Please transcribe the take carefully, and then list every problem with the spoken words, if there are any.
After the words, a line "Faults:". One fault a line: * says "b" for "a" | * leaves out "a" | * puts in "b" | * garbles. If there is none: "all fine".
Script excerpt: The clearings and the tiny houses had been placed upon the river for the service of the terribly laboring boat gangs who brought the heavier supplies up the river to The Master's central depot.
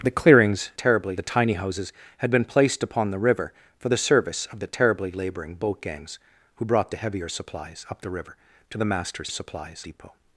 The clearings terribly the tiny houses had been placed upon the river for the service of the terribly laboring boat gangs who brought the heavier supplies up the river to The Master's supplies depot.
Faults:
* says "terribly" for "and"
* says "supplies" for "central"